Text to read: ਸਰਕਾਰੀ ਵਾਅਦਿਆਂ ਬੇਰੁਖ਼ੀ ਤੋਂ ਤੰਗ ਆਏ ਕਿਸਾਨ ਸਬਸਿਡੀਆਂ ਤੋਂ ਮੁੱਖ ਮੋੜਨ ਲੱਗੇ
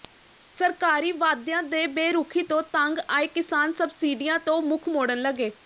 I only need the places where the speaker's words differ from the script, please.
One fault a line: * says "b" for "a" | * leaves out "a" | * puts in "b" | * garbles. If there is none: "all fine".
* puts in "ਦੇ"